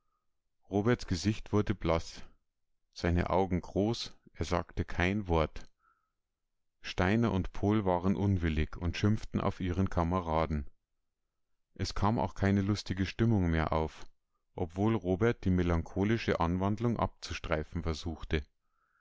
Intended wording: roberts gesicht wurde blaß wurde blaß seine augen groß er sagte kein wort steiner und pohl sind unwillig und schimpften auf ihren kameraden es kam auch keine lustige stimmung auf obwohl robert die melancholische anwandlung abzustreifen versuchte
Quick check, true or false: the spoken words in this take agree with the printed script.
false